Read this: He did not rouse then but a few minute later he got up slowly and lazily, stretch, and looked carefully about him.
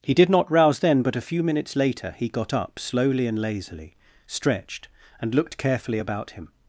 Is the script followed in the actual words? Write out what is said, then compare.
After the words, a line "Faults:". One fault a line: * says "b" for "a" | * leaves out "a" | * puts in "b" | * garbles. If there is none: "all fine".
He did not rouse then but a few minutes later he got up slowly and lazily, stretched, and looked carefully about him.
Faults:
* says "minutes" for "minute"
* says "stretched" for "stretch"